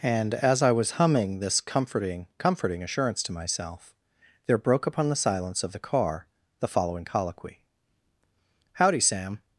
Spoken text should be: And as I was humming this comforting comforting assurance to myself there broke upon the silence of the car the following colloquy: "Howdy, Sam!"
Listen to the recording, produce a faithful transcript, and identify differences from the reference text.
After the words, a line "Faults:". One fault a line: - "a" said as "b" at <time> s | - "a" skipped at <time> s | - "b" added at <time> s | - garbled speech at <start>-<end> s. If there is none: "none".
And as I was humming this comforting comforting assurance to myself there broke upon the silence of the car the following colloquy: "Howdy, Sam!"
Faults:
none